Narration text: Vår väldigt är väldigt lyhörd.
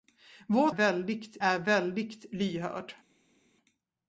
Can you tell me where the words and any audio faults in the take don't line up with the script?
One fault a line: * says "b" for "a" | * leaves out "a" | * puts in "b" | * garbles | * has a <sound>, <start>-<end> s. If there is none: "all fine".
all fine